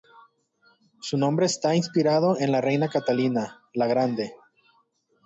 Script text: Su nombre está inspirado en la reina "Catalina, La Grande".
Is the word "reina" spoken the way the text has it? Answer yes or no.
yes